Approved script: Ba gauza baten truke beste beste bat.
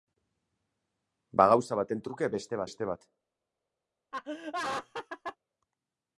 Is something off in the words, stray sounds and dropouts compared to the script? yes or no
yes